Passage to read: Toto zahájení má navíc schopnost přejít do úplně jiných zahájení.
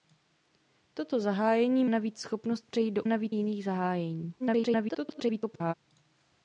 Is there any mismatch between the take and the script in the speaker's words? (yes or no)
yes